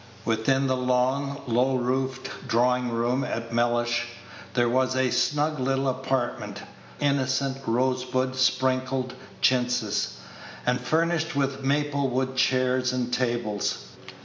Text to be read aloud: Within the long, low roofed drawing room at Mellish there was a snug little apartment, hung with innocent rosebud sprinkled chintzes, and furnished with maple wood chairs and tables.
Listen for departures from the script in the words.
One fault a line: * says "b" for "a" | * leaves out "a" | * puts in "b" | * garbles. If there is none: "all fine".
* leaves out "hung with"